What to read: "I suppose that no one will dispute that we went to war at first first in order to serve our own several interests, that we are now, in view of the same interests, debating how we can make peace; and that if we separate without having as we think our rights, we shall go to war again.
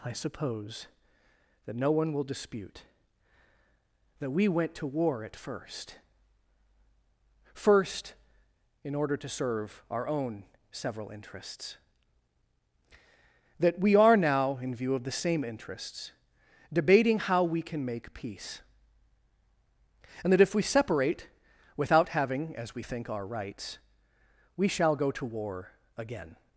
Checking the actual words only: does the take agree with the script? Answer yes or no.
yes